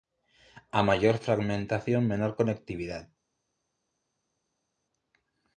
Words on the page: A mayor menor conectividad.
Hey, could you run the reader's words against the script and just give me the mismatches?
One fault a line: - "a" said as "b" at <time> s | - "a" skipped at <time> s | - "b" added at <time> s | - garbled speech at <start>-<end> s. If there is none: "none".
- "fragmentación" added at 1.2 s